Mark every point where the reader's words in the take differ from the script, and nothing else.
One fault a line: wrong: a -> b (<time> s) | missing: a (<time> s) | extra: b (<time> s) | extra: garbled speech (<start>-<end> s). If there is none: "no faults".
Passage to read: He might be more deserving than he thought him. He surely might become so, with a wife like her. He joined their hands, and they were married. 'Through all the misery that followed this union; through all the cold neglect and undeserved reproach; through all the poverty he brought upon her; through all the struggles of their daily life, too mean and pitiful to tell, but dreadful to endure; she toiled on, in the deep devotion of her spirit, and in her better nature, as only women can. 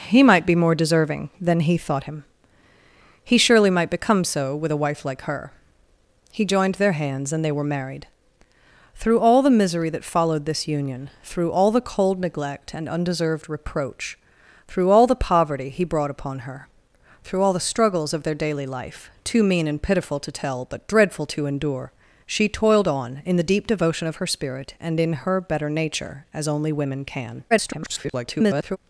extra: garbled speech (27.5-28.8 s)